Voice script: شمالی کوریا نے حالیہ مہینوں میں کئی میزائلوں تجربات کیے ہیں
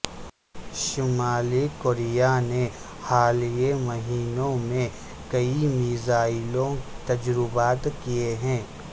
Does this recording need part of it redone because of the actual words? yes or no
no